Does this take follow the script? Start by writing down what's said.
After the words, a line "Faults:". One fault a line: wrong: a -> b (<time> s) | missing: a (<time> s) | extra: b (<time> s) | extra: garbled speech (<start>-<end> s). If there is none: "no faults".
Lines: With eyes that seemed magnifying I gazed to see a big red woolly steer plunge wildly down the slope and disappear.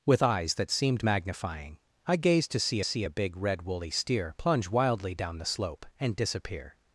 With eyes that seemed magnifying I gazed to see see a big red woolly steer plunge wildly down the slope and disappear.
Faults:
extra: see (2.8 s)